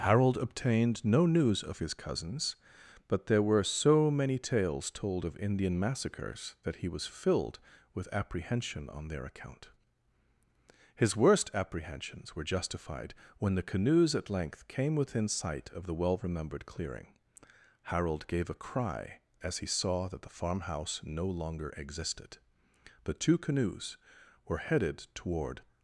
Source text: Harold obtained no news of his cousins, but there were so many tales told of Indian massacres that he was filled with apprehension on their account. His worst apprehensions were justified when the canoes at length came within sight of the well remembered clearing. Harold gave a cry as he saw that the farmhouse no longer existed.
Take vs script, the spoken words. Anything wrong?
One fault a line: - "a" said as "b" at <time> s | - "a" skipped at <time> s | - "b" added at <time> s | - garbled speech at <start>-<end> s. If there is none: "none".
- "The two canoes were headed toward" added at 23.0 s